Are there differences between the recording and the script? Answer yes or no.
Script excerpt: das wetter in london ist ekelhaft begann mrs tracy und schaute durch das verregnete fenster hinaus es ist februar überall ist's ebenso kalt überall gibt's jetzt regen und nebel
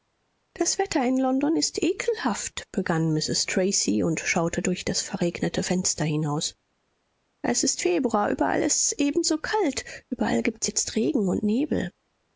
no